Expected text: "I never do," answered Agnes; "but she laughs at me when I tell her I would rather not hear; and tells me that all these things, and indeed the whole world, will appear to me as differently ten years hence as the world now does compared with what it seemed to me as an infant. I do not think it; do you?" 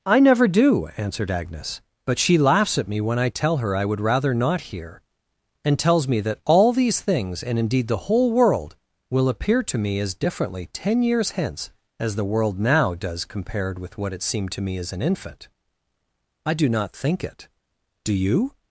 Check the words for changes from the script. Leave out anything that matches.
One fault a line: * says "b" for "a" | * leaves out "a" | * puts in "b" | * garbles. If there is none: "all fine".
all fine